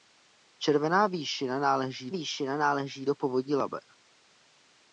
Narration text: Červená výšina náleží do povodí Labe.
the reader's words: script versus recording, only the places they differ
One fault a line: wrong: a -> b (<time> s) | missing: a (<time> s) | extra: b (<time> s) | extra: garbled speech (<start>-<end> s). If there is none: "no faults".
extra: výšina náleží (2.1 s)